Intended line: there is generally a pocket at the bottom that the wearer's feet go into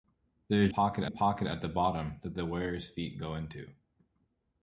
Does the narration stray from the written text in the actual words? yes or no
yes